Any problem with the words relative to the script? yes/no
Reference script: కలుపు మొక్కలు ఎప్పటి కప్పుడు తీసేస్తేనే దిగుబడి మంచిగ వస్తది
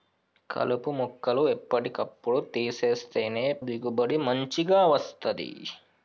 no